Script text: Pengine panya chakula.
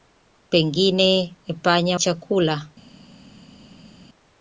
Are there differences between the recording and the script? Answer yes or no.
no